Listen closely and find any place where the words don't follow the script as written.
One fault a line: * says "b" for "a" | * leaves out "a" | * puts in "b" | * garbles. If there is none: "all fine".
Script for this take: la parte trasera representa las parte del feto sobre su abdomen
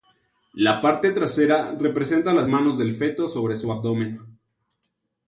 * says "manos" for "parte"